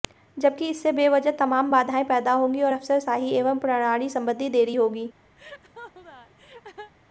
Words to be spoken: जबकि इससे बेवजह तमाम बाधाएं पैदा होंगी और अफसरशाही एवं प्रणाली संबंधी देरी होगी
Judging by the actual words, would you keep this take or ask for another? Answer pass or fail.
pass